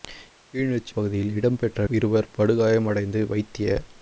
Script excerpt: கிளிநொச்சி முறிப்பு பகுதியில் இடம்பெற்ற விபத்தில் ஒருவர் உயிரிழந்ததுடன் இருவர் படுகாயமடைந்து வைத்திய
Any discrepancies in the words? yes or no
yes